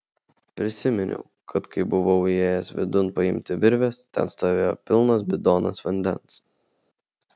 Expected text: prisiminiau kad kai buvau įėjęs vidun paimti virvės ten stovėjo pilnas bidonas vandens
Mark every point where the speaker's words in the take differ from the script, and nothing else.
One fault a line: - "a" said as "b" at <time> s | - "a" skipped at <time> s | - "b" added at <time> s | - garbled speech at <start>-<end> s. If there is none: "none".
none